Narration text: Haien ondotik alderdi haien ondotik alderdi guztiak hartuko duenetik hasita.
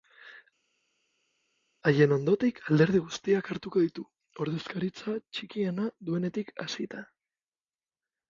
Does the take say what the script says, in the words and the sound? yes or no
no